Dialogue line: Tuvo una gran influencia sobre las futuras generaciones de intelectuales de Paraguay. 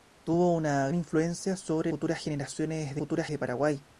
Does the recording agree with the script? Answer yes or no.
no